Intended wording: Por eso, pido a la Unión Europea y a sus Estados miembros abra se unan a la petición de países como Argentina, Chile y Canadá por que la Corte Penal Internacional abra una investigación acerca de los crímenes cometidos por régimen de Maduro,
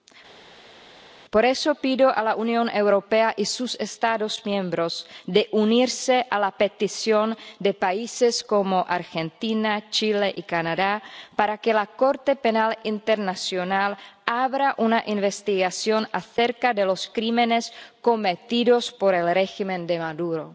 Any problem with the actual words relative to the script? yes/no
yes